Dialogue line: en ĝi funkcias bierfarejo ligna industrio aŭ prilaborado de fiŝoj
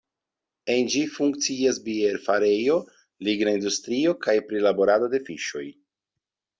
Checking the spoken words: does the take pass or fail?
fail